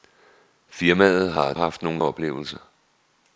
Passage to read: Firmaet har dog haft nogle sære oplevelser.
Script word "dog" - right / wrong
wrong